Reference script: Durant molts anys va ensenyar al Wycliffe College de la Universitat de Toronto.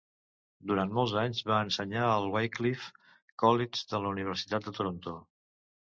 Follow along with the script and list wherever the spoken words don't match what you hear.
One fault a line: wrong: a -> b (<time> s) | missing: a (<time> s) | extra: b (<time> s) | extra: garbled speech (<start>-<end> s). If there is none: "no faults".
no faults